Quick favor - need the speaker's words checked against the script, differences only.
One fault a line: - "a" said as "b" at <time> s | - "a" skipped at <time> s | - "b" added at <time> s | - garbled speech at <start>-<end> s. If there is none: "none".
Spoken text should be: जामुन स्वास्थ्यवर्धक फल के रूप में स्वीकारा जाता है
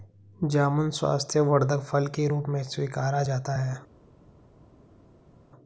none